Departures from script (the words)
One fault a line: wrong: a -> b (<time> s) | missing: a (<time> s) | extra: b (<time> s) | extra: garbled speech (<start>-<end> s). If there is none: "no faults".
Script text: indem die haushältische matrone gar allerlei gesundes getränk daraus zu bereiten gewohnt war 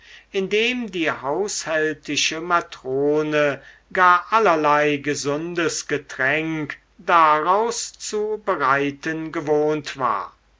no faults